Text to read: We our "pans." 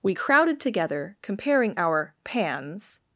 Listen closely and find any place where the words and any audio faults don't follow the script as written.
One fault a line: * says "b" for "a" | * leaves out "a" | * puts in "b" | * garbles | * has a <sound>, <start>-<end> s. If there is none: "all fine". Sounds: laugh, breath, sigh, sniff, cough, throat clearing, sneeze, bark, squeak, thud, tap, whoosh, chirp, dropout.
* puts in "crowded together comparing"